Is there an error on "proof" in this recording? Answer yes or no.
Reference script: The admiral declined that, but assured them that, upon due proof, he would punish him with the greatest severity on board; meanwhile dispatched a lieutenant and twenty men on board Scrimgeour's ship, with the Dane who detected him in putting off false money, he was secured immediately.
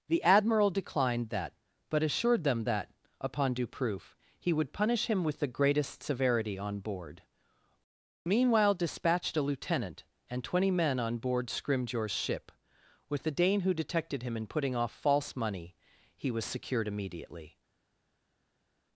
no